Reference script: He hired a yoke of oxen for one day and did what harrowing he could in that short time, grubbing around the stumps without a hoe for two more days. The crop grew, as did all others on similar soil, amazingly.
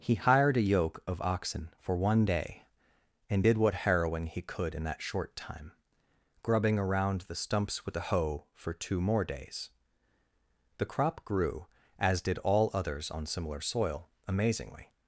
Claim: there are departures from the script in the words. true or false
true